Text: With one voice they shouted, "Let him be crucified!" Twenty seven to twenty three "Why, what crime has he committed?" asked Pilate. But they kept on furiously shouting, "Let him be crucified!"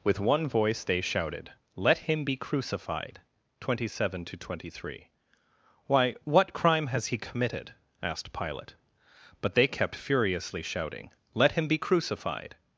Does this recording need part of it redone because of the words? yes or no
yes